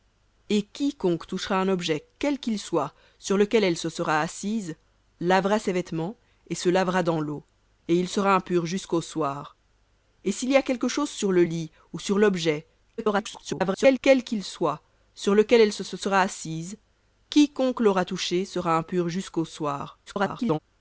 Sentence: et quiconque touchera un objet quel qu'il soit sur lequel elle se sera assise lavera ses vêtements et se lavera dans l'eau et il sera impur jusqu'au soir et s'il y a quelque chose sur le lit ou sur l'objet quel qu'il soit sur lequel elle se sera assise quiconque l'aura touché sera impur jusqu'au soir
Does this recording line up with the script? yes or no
no